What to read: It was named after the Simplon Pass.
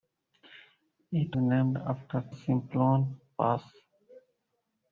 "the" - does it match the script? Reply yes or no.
no